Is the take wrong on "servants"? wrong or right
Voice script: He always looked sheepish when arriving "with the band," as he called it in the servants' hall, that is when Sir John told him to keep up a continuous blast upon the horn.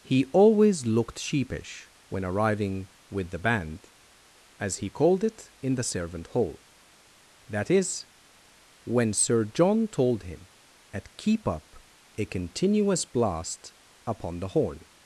wrong